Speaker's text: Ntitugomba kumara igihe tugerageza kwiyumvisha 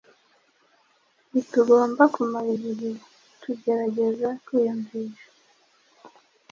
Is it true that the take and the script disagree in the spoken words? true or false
false